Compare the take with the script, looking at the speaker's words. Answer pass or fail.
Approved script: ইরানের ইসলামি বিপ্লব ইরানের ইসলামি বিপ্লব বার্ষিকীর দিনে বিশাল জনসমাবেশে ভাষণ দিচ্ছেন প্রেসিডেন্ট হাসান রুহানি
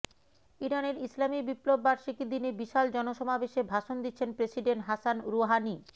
fail